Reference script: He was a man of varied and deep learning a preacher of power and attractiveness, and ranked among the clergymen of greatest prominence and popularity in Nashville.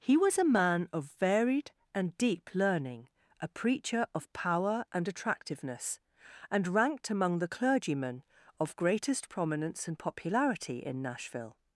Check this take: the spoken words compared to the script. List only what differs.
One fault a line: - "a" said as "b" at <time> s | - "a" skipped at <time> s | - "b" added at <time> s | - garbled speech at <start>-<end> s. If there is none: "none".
none